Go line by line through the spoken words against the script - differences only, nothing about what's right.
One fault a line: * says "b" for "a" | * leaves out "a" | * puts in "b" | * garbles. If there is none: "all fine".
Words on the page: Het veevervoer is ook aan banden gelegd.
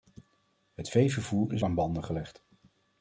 * leaves out "ook"